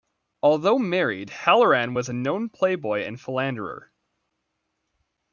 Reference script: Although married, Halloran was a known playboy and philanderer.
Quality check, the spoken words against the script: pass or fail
pass